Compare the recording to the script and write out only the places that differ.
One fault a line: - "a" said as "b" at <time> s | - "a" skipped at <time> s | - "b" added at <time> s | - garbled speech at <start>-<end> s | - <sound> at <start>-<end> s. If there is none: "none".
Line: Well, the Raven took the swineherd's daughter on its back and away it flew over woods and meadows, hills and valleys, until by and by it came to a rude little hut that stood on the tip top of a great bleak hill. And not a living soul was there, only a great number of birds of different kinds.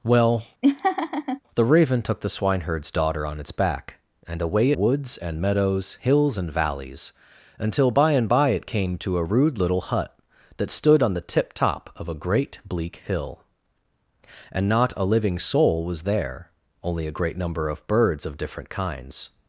- laugh at 0.6-1.4 s
- "it flew over" skipped at 4.7 s